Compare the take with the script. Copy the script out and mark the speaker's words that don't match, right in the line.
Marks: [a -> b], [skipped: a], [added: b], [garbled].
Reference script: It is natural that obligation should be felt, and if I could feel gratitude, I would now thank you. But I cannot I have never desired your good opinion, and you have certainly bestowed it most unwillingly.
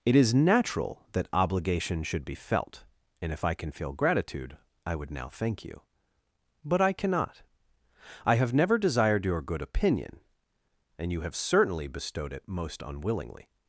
It is natural that obligation should be felt, and if I [could -> can] feel gratitude, I would now thank you. But I cannot I have never desired your good opinion, and you have certainly bestowed it most unwillingly.